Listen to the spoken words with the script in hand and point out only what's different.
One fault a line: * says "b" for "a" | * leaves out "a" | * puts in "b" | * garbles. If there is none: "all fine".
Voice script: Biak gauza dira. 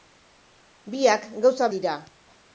all fine